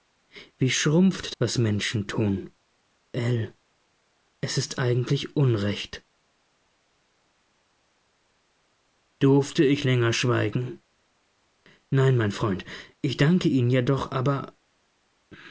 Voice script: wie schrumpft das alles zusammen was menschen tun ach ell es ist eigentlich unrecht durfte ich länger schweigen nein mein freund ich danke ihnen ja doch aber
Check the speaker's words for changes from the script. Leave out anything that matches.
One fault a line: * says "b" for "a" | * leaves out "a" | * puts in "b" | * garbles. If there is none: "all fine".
* leaves out "das alles zusammen"
* leaves out "ach"